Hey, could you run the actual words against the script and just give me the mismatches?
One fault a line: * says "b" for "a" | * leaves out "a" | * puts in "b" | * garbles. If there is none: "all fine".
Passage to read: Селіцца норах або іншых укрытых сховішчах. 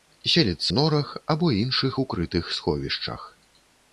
all fine